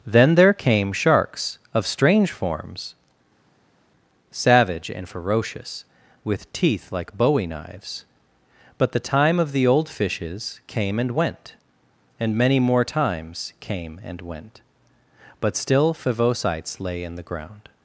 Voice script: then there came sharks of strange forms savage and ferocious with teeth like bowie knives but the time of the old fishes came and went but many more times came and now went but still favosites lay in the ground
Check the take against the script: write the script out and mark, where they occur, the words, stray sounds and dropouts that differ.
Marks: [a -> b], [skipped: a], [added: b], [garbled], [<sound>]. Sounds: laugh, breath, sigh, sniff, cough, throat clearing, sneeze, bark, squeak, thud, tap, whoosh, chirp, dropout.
then there came sharks of strange forms savage and ferocious with teeth like bowie knives but the time of the old fishes came and went [but -> and] many more times came and [skipped: now] went but still favosites lay in the ground